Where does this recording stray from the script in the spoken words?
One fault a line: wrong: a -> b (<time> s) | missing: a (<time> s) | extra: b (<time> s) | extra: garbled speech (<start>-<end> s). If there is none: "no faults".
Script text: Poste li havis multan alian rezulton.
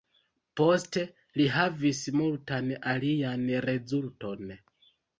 no faults